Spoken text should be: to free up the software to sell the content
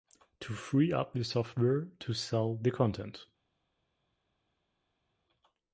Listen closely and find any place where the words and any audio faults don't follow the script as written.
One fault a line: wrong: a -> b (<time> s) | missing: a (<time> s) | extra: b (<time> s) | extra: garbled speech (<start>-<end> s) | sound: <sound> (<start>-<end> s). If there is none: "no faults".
no faults